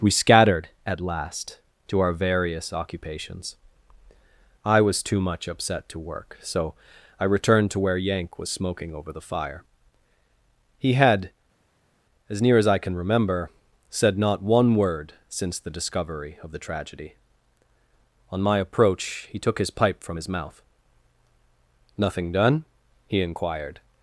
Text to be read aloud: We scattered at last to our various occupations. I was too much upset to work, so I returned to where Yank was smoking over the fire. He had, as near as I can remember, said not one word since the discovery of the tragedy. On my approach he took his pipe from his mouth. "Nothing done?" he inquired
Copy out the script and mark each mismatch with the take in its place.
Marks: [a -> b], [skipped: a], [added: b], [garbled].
We scattered at last to our various occupations. I was too much upset to work, so I returned to where Yank was smoking over the fire. He had, as near as I can remember, said not one word since the discovery of the tragedy. On my approach he took his pipe from his mouth. "Nothing done?" he inquired